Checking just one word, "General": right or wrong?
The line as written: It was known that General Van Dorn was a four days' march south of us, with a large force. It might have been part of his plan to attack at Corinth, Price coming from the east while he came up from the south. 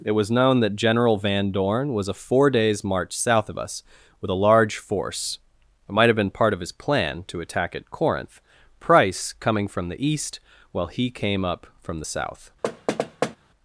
right